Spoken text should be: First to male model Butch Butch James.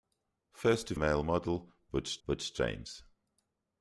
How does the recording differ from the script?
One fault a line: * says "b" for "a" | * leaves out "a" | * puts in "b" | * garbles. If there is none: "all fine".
all fine